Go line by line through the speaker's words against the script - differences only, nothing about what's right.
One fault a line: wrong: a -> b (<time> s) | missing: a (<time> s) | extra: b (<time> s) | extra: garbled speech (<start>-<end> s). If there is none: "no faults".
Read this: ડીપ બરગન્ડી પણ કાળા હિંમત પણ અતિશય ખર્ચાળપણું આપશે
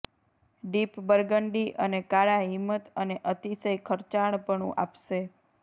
wrong: પણ -> અને (1.8 s)
wrong: પણ -> અને (3.0 s)